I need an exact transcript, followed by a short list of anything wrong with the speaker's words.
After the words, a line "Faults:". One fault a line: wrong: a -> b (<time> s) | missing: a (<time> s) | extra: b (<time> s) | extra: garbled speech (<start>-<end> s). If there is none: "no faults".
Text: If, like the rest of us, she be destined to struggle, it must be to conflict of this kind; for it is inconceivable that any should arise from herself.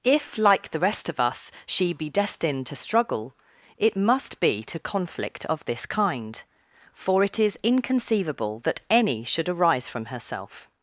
If, like the rest of us, she be destined to struggle, it must be to conflict of this kind; for it is inconceivable that any should arise from herself.
Faults:
no faults